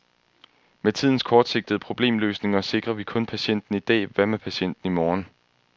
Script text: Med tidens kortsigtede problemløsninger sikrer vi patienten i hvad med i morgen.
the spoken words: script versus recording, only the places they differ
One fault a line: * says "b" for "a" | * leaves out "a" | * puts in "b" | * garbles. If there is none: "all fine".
* puts in "kun"
* puts in "dag"
* puts in "patienten"